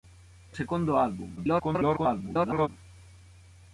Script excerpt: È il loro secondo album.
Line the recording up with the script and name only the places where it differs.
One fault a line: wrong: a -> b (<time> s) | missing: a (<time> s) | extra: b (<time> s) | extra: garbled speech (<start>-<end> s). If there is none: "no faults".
missing: il loro (0.6 s)
extra: garbled speech (1.4-2.7 s)